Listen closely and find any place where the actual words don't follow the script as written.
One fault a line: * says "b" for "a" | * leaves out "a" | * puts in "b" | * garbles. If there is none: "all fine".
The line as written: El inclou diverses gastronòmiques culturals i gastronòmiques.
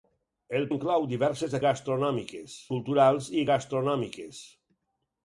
all fine